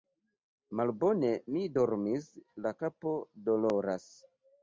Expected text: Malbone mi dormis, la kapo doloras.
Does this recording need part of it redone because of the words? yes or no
no